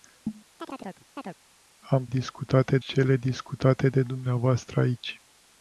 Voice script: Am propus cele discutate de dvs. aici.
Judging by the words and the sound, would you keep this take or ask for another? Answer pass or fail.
fail